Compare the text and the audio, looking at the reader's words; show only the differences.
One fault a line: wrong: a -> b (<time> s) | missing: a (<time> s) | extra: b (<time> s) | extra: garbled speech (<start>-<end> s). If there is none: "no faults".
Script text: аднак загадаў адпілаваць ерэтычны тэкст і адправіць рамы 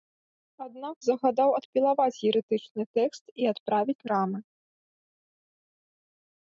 no faults